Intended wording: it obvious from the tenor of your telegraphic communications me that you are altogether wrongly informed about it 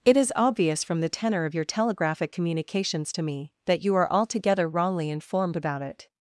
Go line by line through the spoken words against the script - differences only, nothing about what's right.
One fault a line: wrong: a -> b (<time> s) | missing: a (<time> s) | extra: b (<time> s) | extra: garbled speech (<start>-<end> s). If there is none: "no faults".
extra: is (0.2 s)
extra: to (3.1 s)